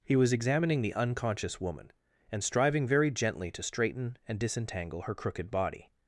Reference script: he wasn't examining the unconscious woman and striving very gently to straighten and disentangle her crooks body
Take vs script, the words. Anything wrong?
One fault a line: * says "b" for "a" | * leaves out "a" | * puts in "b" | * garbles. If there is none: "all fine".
* says "was" for "wasn't"
* says "crooked" for "crooks"